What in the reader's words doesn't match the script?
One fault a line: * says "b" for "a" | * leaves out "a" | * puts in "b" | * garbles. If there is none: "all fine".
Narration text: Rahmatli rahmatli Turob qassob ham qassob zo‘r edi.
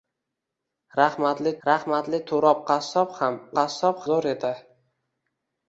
all fine